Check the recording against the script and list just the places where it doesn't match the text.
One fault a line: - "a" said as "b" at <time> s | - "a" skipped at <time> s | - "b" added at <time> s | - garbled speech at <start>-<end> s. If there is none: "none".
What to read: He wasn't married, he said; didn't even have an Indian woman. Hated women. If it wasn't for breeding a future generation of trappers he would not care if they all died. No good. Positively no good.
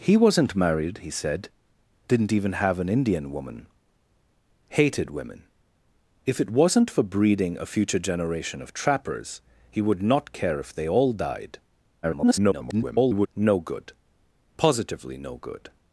- garbled speech at 12.0-13.3 s